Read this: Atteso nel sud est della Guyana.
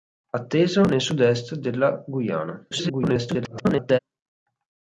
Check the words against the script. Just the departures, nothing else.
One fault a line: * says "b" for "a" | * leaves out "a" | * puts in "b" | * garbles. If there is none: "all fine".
* garbles